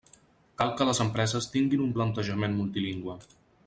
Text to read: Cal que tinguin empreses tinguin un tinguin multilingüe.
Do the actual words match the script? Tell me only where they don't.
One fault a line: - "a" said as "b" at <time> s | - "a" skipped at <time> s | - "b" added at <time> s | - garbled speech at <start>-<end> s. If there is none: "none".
- "tinguin" said as "les" at 0.9 s
- "tinguin" said as "plantejament" at 2.0 s